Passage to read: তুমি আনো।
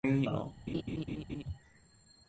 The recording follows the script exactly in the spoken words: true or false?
true